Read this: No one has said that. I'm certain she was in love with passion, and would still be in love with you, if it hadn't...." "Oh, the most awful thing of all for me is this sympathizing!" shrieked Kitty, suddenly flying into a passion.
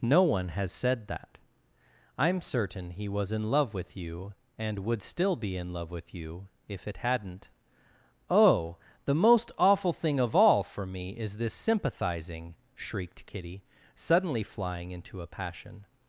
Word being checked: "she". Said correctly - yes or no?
no